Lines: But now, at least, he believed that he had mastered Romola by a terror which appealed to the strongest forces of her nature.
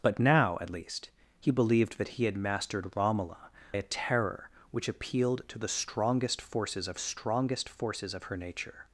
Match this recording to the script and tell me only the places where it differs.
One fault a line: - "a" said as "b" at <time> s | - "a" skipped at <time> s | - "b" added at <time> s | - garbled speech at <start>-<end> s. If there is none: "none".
- "by" skipped at 3.5 s
- "strongest forces of" added at 7.0 s